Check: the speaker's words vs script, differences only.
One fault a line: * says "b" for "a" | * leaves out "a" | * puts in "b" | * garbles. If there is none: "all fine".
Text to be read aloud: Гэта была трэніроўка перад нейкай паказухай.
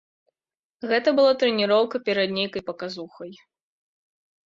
all fine